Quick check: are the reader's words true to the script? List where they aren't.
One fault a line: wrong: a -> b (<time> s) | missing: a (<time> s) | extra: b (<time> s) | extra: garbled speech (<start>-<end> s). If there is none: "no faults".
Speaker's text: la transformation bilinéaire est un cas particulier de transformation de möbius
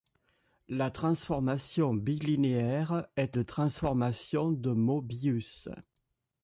missing: un cas particulier (3.4 s)